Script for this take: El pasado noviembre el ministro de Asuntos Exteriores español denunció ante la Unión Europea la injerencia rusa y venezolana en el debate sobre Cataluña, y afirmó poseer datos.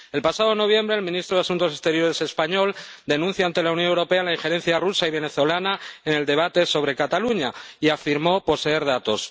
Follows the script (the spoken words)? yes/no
yes